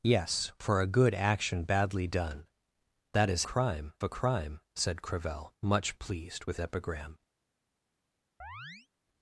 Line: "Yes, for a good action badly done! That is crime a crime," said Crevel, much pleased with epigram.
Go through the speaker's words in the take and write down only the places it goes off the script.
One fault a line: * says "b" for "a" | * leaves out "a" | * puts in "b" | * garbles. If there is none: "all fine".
all fine